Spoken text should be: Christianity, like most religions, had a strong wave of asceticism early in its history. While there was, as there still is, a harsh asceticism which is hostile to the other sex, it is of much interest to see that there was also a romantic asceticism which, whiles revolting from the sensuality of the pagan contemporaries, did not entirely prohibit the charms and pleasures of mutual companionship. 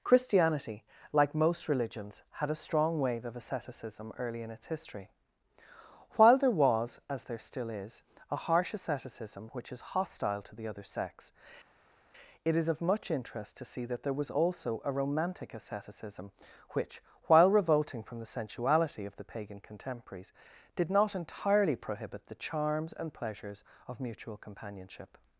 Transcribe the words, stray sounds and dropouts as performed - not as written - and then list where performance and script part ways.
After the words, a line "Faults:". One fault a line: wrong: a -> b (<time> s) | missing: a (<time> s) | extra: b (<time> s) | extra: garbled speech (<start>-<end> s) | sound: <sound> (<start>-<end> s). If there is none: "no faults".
Christianity, like most religions, had a strong wave of asceticism early in its history. While there was, as there still is, a harsh asceticism which is hostile to the other sex, it is of much interest to see that there was also a romantic asceticism which, while revolting from the sensuality of the pagan contemporaries, did not entirely prohibit the charms and pleasures of mutual companionship.
Faults:
wrong: whiles -> while (17.2 s)